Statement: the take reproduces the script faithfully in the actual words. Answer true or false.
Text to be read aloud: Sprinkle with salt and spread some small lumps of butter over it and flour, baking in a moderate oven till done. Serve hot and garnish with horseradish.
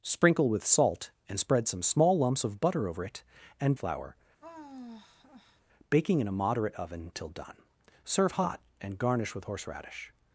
true